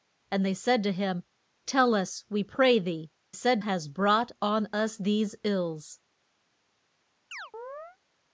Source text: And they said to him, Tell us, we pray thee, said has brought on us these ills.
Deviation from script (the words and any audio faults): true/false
true